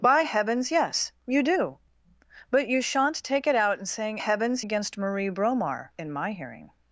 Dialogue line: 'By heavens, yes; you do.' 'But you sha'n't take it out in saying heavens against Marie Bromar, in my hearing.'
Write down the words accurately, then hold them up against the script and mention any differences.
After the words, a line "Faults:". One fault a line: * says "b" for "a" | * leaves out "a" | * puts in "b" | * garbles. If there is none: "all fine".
'By heavens, yes; you do.' 'But you sha'n't take it out in saying heavens against Marie Bromar, in my hearing.'
Faults:
all fine